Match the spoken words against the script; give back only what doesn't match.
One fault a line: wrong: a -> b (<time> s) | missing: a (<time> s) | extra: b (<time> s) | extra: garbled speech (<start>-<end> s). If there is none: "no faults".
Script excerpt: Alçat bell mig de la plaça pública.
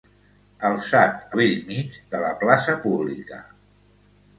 no faults